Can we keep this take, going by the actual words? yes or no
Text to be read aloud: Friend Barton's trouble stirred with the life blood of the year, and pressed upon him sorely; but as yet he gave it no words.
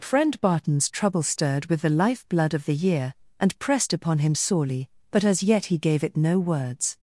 yes